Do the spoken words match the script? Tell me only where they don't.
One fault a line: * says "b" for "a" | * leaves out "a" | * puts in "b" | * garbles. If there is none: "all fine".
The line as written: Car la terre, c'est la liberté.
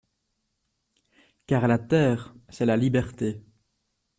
all fine